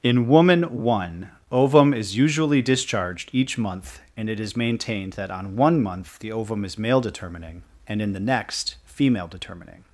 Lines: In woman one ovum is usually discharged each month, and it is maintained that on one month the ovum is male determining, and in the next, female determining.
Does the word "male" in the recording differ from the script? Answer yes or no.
no